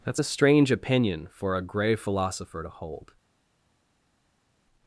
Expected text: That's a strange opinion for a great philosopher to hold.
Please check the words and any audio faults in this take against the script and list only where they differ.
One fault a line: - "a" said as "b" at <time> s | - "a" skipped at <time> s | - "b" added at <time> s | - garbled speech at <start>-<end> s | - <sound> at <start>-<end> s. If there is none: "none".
- "great" said as "grey" at 1.6 s